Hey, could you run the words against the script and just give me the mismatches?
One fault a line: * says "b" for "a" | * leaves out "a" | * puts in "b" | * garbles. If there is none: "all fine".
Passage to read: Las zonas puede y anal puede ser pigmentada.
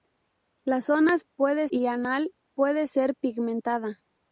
all fine